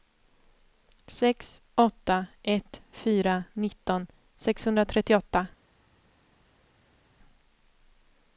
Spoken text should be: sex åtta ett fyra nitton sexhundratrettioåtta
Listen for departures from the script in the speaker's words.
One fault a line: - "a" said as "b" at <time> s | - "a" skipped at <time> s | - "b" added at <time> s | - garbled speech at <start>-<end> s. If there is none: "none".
none